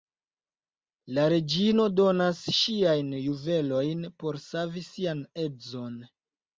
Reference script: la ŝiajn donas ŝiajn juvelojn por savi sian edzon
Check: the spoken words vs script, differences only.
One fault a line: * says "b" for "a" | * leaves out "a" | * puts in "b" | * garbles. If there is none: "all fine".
* says "reĝino" for "ŝiajn"